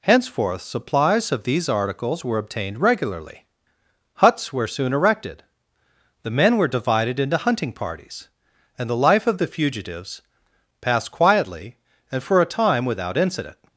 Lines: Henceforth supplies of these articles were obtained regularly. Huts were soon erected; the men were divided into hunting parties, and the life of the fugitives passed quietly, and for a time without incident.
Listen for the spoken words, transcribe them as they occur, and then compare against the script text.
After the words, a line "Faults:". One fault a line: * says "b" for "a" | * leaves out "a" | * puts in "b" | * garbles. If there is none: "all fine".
Henceforth supplies of these articles were obtained regularly. Huts were soon erected; the men were divided into hunting parties, and the life of the fugitives passed quietly, and for a time without incident.
Faults:
all fine